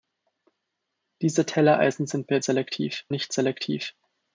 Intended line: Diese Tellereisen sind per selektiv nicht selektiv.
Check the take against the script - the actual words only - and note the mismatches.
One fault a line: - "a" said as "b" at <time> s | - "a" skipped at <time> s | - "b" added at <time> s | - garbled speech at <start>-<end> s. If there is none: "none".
none